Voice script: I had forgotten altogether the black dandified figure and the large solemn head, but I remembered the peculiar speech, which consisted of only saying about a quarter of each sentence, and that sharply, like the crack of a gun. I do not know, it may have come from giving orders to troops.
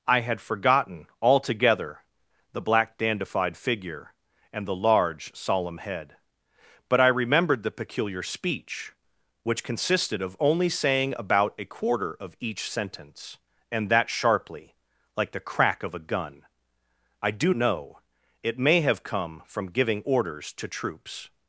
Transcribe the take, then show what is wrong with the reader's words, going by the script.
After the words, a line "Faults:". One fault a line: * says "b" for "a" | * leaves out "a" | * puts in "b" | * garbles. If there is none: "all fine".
I had forgotten altogether the black dandified figure and the large solemn head, but I remembered the peculiar speech, which consisted of only saying about a quarter of each sentence, and that sharply, like the crack of a gun. I do know, it may have come from giving orders to troops.
Faults:
* leaves out "not"